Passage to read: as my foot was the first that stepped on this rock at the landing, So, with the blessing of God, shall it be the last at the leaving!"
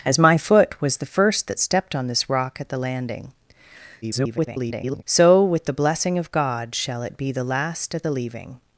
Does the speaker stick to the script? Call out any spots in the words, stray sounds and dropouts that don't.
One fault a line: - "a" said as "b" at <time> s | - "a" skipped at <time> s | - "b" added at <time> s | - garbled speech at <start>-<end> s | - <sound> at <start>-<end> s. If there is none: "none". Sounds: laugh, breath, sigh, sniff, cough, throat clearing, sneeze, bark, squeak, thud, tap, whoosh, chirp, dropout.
- garbled speech at 4.0-5.0 s